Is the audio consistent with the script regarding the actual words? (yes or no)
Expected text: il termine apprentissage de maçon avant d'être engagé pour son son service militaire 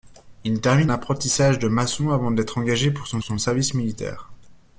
yes